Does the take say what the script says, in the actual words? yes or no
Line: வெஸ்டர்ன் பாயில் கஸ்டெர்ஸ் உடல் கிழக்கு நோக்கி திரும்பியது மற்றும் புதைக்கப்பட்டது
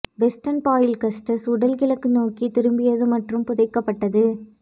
yes